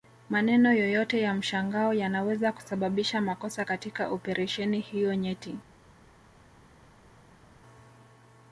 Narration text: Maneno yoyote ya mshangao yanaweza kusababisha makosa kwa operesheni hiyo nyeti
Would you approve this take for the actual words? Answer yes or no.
no